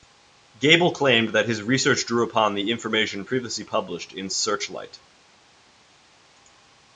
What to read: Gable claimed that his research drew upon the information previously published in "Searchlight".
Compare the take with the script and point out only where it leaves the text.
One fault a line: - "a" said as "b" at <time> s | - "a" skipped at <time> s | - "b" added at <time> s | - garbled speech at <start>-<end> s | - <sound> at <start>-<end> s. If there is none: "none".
none